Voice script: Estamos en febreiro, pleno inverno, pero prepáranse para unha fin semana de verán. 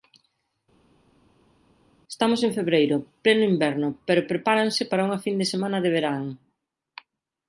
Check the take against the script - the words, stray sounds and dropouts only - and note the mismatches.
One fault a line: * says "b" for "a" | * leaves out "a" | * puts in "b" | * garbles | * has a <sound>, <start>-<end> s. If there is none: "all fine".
* puts in "de"